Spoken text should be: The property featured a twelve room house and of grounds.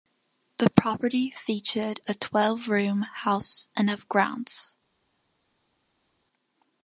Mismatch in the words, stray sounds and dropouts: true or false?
false